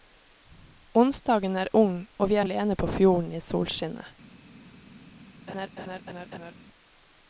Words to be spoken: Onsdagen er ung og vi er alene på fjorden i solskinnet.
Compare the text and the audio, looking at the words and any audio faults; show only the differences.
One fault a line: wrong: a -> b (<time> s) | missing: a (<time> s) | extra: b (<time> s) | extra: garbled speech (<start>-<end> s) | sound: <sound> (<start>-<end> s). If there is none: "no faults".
sound: laugh (5.5-6.5 s)